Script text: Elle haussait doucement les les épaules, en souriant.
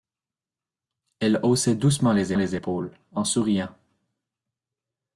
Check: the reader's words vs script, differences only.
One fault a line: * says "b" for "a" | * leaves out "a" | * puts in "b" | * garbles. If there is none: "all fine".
all fine